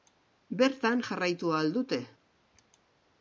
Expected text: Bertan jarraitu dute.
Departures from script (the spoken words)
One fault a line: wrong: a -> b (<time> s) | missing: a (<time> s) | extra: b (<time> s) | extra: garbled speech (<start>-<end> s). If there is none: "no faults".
extra: ahal (1.5 s)